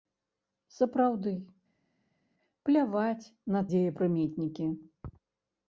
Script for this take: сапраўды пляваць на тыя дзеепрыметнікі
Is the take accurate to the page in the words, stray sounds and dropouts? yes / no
no